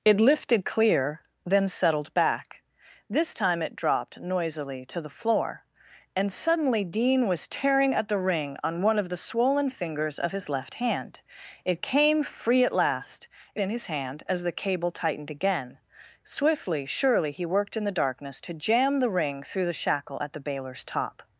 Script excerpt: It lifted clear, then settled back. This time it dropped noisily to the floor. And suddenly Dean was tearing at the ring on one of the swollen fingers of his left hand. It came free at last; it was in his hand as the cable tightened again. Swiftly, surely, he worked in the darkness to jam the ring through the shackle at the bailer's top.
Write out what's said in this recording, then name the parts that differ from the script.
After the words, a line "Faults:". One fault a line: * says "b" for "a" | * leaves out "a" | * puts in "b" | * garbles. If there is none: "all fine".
It lifted clear, then settled back. This time it dropped noisily to the floor. And suddenly Dean was tearing at the ring on one of the swollen fingers of his left hand. It came free at last; it in his hand as the cable tightened again. Swiftly, surely, he worked in the darkness to jam the ring through the shackle at the bailer's top.
Faults:
* leaves out "was"